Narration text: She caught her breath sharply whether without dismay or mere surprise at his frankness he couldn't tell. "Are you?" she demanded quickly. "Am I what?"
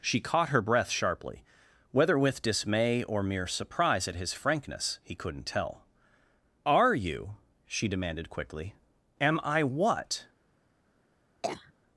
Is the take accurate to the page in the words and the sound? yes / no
no